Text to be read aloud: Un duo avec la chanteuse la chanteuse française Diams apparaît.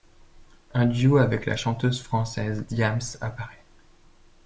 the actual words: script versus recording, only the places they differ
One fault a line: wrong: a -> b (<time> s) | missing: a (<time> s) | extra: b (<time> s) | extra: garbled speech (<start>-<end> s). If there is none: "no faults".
missing: la chanteuse (2.0 s)